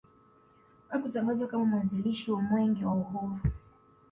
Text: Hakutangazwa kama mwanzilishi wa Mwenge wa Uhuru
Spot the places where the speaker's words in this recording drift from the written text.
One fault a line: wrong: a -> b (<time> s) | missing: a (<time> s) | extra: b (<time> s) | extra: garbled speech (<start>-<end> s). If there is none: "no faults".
no faults